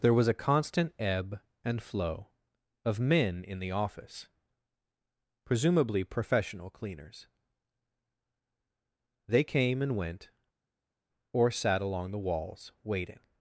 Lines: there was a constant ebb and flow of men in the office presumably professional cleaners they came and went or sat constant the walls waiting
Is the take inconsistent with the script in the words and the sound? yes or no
yes